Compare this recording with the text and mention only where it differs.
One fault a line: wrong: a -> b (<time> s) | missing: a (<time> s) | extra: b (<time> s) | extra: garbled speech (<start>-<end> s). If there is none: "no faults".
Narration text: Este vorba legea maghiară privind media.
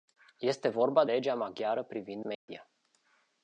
no faults